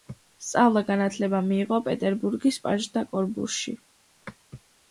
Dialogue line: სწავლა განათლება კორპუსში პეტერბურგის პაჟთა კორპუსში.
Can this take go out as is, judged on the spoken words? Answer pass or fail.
fail